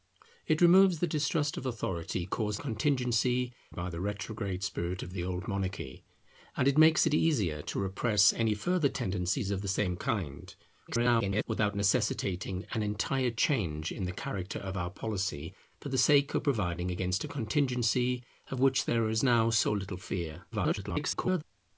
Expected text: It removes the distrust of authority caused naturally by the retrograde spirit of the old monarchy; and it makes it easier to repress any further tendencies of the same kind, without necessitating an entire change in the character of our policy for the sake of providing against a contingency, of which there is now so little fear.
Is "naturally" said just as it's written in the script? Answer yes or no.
no